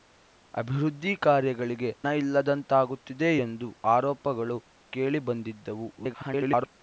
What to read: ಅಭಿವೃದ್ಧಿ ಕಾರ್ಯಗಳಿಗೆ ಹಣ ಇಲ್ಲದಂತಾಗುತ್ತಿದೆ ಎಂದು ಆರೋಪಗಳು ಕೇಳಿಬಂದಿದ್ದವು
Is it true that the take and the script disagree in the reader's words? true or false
true